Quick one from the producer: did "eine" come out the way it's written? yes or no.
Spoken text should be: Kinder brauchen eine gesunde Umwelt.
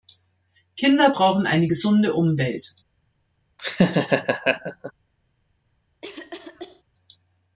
yes